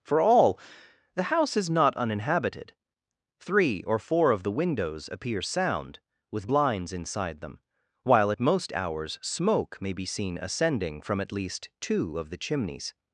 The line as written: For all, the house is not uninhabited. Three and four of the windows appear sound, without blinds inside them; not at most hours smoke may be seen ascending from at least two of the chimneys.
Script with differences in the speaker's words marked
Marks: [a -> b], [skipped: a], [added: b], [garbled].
For all, the house is not uninhabited. Three [and -> or] four of the windows appear sound, [without -> with] blinds inside them; [not -> while] at most hours smoke may be seen ascending from at least two of the chimneys.